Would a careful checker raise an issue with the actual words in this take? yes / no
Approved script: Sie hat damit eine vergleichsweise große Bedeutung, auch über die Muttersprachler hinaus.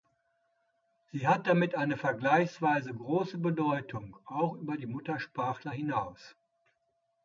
no